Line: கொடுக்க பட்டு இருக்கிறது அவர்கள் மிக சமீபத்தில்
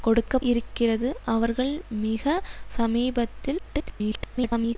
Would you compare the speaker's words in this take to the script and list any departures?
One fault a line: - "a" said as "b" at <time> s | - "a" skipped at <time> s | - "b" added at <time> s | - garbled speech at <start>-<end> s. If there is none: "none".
- "பட்டு" skipped at 0.4 s
- garbled speech at 3.6-4.8 s